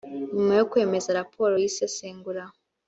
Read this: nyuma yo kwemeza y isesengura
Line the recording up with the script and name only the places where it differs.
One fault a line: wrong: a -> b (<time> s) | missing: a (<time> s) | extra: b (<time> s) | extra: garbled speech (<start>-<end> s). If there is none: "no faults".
extra: raporo (1.2 s)